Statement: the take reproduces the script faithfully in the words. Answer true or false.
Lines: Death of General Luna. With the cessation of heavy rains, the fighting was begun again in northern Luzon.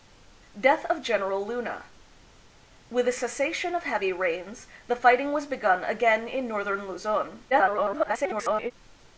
false